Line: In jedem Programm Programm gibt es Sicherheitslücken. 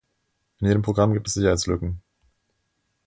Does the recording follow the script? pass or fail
fail